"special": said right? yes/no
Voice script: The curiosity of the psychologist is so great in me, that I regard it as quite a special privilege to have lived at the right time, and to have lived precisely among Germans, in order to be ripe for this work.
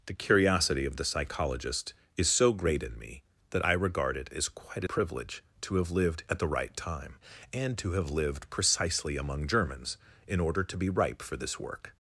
no